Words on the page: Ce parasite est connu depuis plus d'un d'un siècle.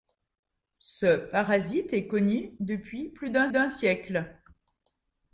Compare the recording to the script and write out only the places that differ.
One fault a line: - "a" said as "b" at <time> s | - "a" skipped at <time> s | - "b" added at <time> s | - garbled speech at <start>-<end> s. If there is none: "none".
none